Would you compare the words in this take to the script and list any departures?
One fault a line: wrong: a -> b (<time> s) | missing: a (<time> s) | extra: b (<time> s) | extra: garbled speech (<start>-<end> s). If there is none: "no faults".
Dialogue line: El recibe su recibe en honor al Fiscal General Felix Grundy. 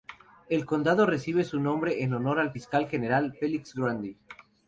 extra: condado (0.7 s)
wrong: recibe -> nombre (1.6 s)